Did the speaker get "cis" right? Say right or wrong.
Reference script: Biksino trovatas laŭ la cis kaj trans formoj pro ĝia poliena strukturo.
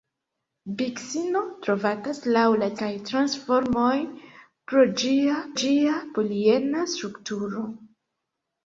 wrong